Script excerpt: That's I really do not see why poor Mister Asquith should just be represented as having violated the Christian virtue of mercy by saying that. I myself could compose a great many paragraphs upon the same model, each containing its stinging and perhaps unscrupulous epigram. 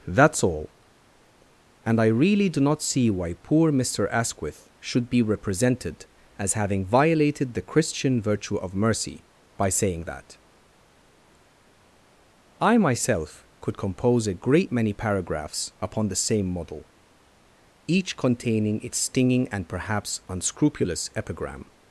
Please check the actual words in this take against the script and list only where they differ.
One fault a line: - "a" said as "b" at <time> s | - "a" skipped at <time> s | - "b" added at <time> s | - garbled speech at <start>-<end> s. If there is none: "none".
- "all And" added at 0.4 s
- "just" skipped at 5.1 s